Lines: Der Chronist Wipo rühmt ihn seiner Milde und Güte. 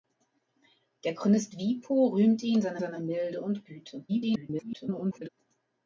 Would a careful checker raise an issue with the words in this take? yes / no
yes